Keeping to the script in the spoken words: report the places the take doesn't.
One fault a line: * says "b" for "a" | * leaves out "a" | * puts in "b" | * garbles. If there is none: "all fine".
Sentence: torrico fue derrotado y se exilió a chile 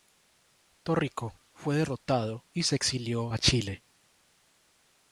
all fine